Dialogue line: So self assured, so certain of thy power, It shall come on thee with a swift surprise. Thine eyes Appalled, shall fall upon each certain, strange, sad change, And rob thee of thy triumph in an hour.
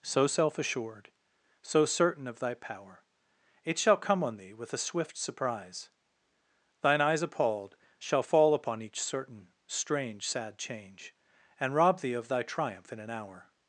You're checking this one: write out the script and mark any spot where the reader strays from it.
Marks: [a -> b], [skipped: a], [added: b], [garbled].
So self assured, so certain of thy power, It shall come on thee with a swift surprise. Thine eyes Appalled, shall fall upon each certain, strange, sad change, And rob thee of thy triumph in an hour.